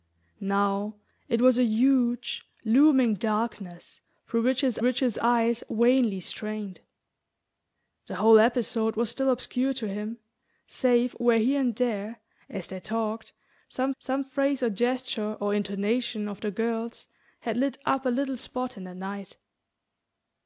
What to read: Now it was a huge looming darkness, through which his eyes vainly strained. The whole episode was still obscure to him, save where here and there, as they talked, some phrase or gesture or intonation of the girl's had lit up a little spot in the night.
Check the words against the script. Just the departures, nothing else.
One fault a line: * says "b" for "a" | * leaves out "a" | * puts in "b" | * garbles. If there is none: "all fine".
* puts in "which his"
* puts in "some"